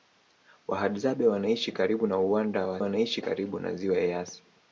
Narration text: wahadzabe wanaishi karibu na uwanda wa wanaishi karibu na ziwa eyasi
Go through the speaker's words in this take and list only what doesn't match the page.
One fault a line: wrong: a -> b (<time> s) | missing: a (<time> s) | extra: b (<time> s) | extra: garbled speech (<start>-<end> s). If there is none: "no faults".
no faults